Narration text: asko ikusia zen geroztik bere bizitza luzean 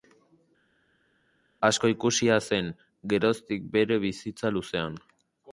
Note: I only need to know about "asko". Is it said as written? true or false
true